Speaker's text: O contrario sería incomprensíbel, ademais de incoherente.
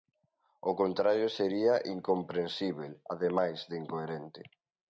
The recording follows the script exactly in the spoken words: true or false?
true